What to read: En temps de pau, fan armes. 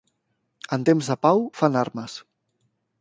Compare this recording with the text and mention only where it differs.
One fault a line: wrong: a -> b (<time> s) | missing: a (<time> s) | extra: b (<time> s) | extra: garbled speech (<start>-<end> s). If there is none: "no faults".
no faults